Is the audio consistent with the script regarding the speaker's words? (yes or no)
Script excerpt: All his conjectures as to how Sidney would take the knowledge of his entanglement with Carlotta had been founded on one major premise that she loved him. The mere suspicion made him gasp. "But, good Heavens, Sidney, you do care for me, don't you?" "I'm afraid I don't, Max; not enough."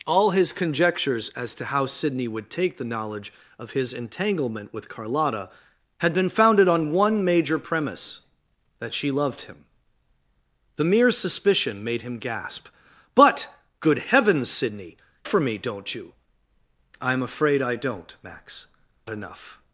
no